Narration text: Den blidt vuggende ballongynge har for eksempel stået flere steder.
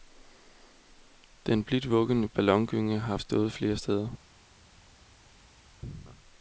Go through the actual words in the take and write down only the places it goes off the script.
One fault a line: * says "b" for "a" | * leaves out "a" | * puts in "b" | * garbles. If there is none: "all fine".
* leaves out "for eksempel"